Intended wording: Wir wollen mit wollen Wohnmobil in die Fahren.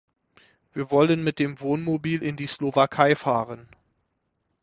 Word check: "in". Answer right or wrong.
right